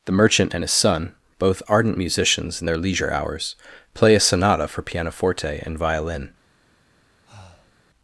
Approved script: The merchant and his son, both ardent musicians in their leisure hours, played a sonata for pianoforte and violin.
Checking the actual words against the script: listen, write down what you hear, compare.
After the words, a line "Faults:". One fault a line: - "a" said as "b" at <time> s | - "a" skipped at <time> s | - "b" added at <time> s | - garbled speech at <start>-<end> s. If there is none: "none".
The merchant and his son, both ardent musicians in their leisure hours, play a sonata for pianoforte and violin.
Faults:
- "played" said as "play" at 3.9 s